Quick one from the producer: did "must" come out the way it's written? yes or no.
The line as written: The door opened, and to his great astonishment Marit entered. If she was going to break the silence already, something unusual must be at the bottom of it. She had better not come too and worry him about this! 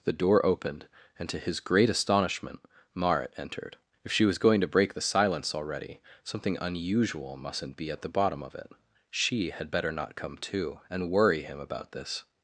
no